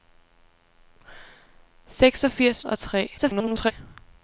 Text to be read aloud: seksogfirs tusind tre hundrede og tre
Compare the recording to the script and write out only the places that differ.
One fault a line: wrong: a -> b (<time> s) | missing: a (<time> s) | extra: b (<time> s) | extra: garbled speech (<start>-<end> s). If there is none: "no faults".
missing: tusind tre hundrede (2.6 s)
extra: garbled speech (3.2-3.7 s)